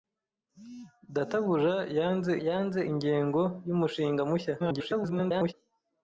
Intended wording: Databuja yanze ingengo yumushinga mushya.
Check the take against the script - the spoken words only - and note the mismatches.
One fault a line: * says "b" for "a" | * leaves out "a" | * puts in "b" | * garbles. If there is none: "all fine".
* puts in "yanze"
* garbles